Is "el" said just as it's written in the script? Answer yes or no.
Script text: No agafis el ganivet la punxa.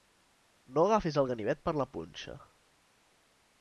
yes